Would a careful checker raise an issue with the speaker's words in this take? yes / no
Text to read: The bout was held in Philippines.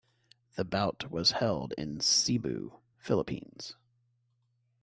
yes